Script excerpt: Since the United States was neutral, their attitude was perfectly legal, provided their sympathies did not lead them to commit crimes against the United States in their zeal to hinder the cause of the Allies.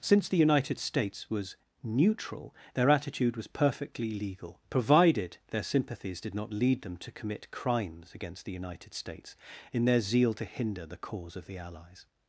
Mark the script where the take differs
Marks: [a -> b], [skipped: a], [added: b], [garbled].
Since the United States was neutral, their attitude was perfectly legal, provided their sympathies did not lead them to commit crimes against the United States in their zeal to hinder the cause of the Allies.